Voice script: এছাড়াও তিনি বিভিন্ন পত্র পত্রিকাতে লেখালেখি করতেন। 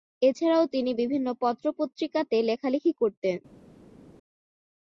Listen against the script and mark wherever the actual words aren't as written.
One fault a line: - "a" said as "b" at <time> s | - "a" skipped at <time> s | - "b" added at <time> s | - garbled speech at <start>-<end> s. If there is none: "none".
none